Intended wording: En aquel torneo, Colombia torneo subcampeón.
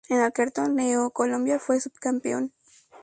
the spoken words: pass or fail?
fail